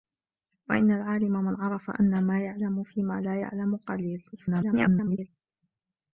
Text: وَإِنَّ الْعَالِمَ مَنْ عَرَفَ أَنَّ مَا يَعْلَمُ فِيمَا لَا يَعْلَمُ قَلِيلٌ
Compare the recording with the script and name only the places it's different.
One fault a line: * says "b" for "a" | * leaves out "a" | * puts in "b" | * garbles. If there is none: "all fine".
* garbles